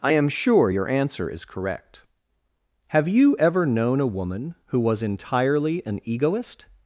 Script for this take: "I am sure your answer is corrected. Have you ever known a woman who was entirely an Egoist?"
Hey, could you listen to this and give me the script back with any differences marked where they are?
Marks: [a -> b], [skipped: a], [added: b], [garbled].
"I am sure your answer is [corrected. -> correct] Have you ever known a woman who was entirely an Egoist?"